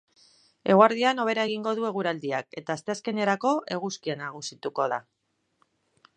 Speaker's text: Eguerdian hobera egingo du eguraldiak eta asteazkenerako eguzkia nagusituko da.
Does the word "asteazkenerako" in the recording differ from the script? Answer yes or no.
no